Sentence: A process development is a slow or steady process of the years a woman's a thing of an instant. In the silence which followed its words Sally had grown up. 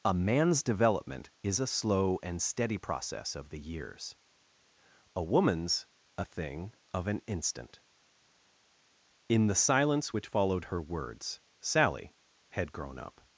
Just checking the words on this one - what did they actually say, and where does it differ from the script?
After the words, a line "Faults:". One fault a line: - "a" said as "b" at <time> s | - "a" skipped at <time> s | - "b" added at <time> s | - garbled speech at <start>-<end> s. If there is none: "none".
A man's development is a slow and steady process of the years a woman's a thing of an instant. In the silence which followed her words Sally had grown up.
Faults:
- "process" said as "man's" at 0.1 s
- "or" said as "and" at 2.2 s
- "its" said as "her" at 10.7 s